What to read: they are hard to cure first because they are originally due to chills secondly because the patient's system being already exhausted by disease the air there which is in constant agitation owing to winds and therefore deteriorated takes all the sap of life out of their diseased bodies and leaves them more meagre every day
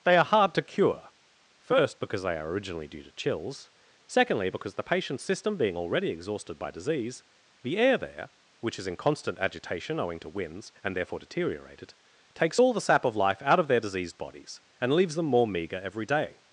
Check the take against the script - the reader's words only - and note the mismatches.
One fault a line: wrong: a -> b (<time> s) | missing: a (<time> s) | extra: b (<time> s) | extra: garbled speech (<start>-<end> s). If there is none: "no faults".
no faults